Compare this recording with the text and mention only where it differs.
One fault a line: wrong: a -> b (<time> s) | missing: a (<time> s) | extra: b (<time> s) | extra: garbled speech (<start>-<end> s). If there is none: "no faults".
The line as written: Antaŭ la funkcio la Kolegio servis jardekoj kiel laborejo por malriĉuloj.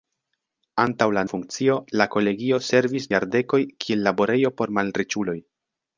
no faults